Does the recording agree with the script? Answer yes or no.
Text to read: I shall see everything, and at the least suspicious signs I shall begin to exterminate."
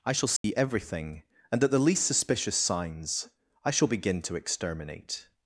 yes